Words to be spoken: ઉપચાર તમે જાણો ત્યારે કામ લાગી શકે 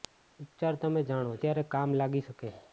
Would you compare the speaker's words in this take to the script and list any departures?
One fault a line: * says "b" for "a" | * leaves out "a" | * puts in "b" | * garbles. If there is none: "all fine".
all fine